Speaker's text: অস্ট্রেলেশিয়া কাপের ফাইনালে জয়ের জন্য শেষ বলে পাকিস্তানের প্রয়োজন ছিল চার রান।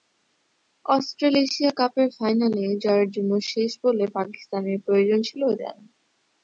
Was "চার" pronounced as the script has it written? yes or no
no